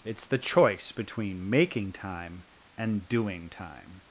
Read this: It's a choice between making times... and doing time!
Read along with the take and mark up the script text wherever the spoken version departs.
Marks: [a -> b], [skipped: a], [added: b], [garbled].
It's [a -> the] choice between making [times... -> time] and doing time!